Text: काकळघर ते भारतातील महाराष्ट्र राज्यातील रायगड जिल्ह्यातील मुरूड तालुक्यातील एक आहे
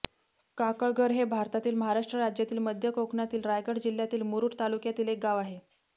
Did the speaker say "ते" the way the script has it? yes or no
no